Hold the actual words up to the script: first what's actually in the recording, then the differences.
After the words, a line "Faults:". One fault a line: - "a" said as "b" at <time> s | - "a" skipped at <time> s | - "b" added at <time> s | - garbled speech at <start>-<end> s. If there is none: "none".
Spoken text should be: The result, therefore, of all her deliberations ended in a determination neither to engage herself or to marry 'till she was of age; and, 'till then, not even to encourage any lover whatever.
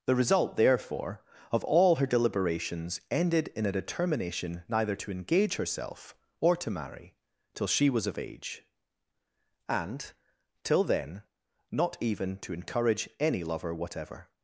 The result, therefore, of all her deliberations ended in a determination neither to engage herself or to marry 'till she was of age; and, 'till then, not even to encourage any lover whatever.
Faults:
none